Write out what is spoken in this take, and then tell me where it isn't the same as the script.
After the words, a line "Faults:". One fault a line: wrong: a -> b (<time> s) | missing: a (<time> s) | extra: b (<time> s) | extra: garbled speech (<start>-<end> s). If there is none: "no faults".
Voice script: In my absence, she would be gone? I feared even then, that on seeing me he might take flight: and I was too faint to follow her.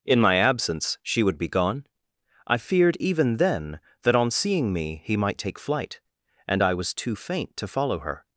In my absence, she would be gone? I feared even then, that on seeing me he might take flight: and I was too faint to follow her.
Faults:
no faults